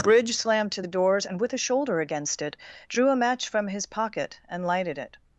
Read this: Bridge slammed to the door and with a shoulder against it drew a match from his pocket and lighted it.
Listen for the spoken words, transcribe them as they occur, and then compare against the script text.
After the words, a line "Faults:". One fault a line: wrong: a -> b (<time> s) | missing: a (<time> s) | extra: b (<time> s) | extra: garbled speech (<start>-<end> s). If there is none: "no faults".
Bridge slammed to the doors and with a shoulder against it drew a match from his pocket and lighted it.
Faults:
wrong: door -> doors (0.9 s)